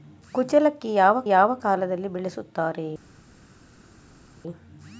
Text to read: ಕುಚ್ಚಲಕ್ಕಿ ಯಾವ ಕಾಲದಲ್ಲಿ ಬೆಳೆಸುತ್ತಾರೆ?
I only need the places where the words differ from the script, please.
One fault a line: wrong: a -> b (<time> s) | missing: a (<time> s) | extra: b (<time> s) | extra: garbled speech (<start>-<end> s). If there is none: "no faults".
extra: ಯಾವ (1.3 s)